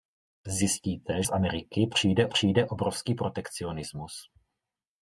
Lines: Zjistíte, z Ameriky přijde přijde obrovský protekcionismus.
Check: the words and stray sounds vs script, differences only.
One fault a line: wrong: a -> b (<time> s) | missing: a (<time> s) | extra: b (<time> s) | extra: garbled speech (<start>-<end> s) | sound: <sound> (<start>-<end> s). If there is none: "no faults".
no faults